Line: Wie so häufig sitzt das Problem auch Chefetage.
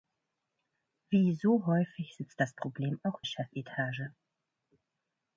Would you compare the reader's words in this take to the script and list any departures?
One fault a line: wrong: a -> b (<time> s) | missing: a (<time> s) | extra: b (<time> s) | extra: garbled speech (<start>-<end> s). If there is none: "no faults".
no faults